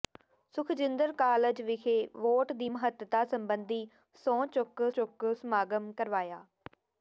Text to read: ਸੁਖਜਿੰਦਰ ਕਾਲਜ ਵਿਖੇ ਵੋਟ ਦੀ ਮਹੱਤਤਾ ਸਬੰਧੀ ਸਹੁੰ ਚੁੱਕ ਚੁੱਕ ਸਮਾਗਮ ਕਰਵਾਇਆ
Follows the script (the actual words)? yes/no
yes